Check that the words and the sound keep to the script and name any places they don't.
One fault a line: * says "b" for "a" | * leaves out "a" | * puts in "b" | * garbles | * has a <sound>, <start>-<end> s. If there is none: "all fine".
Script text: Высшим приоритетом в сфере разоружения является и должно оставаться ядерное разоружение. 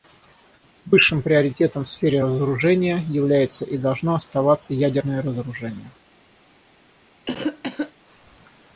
* has a cough, 7.3-7.9 s